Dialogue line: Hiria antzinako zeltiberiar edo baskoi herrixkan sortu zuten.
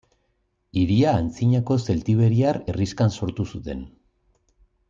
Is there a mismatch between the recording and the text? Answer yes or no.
yes